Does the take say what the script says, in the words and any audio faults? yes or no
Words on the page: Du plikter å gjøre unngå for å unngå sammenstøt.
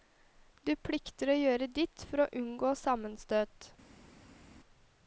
no